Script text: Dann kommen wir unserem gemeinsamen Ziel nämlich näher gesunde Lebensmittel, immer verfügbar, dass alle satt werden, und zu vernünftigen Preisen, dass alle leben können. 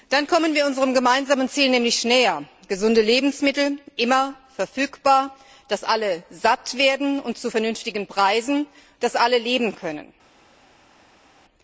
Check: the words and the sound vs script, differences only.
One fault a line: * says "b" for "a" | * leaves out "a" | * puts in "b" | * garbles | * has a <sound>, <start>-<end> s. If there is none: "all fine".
all fine